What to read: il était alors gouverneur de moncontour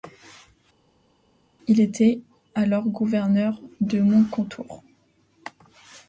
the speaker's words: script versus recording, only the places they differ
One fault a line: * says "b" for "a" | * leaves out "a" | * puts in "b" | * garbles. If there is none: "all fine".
all fine